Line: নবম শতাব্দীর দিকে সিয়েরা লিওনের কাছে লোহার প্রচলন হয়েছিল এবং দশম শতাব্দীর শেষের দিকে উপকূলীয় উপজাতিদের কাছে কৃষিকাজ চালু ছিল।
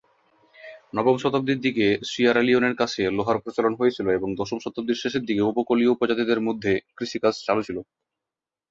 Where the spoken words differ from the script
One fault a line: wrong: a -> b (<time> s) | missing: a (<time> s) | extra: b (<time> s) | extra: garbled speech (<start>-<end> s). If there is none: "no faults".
wrong: কাছে -> মধ্যে (6.5 s)